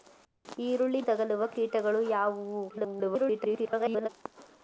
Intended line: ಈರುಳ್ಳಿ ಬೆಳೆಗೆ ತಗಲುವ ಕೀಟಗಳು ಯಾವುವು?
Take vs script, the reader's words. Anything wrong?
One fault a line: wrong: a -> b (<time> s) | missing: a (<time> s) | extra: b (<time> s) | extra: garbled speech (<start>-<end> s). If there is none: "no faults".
missing: ಬೆಳೆಗೆ (1.0 s)
extra: garbled speech (2.7-4.1 s)